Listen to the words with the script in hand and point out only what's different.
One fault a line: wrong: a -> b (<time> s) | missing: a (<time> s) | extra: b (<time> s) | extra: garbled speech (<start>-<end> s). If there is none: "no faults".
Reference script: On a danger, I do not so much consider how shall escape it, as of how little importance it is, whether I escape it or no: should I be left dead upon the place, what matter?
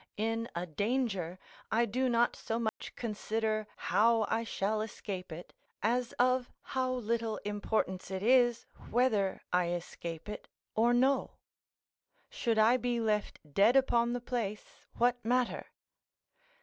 wrong: On -> In (0.2 s)
extra: I (4.3 s)